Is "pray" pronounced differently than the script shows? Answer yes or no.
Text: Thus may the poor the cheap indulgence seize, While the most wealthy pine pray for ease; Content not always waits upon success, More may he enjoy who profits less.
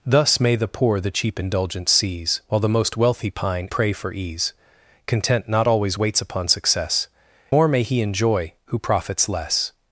no